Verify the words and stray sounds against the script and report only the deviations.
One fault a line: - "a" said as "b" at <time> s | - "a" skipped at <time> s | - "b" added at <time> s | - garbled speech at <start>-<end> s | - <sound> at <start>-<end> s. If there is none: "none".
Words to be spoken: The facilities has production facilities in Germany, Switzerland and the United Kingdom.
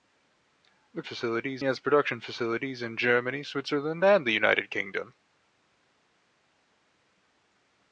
none